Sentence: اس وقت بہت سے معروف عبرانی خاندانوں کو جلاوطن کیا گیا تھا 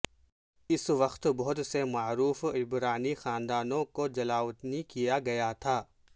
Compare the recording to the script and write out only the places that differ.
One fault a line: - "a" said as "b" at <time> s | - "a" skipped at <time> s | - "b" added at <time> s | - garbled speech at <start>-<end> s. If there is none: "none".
none